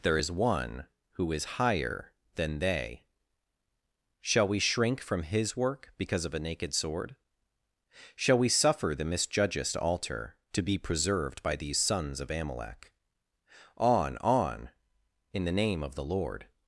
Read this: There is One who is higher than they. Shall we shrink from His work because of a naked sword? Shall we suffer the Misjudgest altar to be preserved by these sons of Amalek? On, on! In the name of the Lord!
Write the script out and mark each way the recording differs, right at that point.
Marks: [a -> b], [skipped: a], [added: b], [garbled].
There is One who is higher than they. Shall we shrink from His work because of a naked sword? Shall we suffer the Misjudgest altar to be preserved by these sons of Amalek? On, on! In the name of the Lord!